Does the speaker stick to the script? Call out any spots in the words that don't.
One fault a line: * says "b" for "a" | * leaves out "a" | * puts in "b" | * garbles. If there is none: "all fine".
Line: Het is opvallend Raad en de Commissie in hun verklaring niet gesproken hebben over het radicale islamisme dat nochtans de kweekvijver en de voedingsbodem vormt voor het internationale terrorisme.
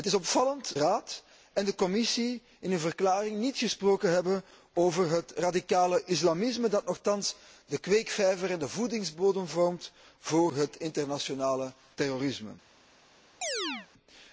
all fine